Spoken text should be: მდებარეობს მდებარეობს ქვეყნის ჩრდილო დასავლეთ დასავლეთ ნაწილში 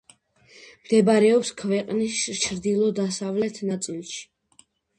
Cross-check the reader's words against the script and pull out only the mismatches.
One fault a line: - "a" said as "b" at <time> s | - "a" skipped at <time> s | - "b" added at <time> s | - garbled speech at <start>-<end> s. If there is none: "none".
- "მდებარეობს" skipped at 1.5 s
- "დასავლეთ" skipped at 3.7 s